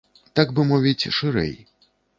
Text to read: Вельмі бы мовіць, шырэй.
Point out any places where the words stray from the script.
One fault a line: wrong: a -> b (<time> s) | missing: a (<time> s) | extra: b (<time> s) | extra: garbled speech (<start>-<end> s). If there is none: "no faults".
wrong: Вельмі -> Так (0.4 s)